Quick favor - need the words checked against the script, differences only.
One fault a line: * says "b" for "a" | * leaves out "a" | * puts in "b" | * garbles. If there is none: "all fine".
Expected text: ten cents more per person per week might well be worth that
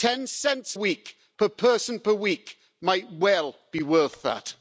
* says "week" for "more"